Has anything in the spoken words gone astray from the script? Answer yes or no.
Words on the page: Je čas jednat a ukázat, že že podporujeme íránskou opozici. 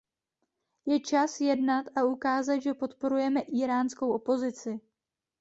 yes